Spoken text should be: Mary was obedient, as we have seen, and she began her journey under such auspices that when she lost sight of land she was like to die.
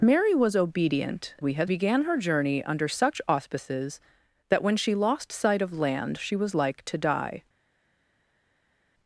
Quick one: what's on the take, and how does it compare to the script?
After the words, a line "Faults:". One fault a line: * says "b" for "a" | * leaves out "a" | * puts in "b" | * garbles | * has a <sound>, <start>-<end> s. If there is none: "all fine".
Mary was obedient, we have began her journey under such auspices that when she lost sight of land she was like to die.
Faults:
* leaves out "as"
* leaves out "seen and she"